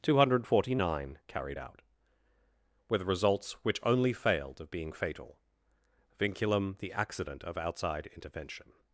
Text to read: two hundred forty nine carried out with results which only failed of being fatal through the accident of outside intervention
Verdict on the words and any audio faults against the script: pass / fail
fail